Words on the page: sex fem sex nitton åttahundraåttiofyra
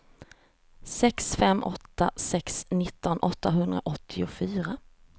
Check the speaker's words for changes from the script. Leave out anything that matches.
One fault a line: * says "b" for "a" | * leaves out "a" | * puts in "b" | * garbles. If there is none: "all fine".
* puts in "åtta"